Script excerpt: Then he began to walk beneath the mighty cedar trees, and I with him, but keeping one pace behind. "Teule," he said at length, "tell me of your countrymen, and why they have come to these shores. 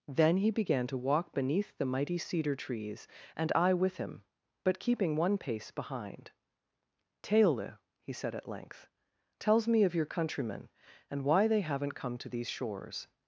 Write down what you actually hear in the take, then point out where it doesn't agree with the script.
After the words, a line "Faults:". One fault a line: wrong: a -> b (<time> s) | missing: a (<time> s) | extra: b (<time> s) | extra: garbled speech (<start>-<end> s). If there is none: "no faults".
Then he began to walk beneath the mighty cedar trees, and I with him, but keeping one pace behind. "Teule," he said at length, "tells me of your countrymen, and why they haven't come to these shores.
Faults:
wrong: tell -> tells (9.4 s)
wrong: have -> haven't (11.6 s)